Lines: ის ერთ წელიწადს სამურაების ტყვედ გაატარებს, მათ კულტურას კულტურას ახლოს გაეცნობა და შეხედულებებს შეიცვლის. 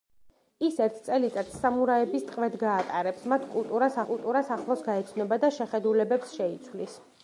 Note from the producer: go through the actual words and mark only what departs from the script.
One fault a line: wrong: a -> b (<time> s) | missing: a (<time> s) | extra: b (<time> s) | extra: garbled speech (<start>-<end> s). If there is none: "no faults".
no faults